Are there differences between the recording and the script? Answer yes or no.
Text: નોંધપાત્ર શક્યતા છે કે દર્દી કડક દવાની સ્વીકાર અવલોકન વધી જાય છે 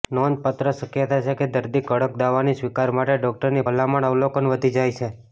yes